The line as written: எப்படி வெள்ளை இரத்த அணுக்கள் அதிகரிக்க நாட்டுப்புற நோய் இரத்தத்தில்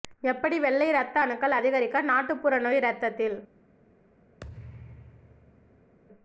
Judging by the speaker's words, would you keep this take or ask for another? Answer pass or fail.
pass